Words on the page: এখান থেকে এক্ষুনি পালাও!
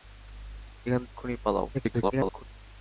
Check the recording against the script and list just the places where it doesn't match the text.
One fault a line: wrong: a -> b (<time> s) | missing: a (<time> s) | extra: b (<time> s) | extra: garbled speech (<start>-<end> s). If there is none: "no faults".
missing: থেকে (1.0 s)
extra: garbled speech (1.7-2.4 s)